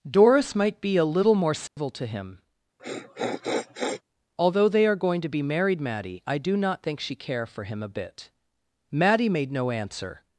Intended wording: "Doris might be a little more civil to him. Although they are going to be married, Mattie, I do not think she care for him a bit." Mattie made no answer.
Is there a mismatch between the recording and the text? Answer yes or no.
no